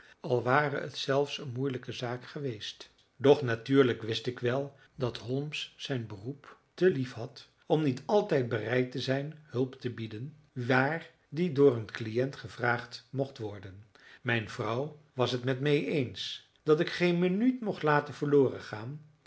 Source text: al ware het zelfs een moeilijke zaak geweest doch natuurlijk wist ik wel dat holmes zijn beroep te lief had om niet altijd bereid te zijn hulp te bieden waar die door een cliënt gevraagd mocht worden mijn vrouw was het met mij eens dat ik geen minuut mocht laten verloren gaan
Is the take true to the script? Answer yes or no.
yes